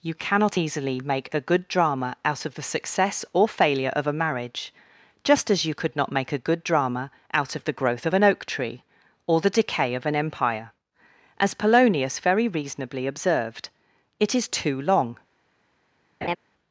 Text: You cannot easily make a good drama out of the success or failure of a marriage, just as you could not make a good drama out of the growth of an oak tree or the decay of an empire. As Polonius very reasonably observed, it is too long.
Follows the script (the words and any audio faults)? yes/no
no